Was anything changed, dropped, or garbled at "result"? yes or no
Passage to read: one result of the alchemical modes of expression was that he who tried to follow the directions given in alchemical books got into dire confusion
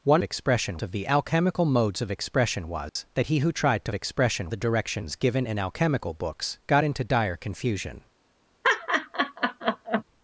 yes